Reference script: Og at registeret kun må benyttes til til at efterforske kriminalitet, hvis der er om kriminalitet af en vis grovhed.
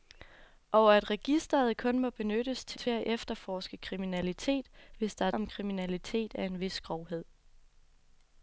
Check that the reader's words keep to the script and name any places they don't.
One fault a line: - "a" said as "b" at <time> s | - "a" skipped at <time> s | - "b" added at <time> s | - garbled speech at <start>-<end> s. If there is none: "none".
none